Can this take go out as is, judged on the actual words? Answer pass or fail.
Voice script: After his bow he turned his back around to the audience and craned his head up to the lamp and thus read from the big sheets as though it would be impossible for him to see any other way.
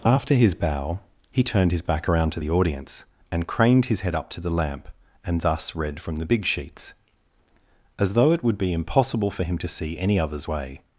fail